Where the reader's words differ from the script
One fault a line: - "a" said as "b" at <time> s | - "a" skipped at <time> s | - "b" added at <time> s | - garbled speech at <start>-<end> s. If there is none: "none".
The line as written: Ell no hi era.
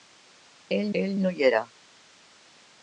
- "ell" added at 1.0 s